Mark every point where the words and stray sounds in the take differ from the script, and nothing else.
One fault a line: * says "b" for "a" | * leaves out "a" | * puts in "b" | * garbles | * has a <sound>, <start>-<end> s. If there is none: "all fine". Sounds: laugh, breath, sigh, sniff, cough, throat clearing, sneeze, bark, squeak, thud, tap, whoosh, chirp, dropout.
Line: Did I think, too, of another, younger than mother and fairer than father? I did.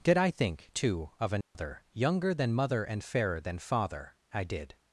* has a dropout, 1.4-1.6 s